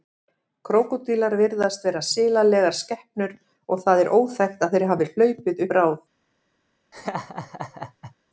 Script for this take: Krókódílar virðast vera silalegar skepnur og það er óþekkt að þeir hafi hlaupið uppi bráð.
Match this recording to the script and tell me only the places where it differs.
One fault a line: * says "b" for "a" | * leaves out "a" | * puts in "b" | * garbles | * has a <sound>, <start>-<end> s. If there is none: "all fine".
* leaves out "uppi"
* has a laugh, 6.9-8.2 s